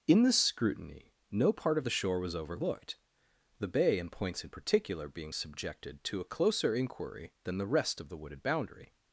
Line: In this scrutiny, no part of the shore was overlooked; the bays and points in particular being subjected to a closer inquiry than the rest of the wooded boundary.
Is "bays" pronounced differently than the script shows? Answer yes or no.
yes